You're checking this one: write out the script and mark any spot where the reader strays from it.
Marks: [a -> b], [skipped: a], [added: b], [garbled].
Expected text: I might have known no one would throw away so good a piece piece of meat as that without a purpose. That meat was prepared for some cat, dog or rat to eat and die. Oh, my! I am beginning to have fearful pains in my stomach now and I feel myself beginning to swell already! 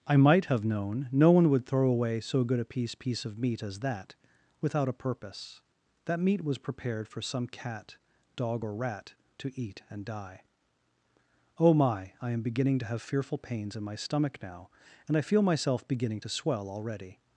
I might have known no one would throw away so good a piece piece of meat as that without a purpose. That meat was prepared for some cat, dog or rat to eat and die. Oh, my! I am beginning to have fearful pains in my stomach now and I feel myself beginning to swell already!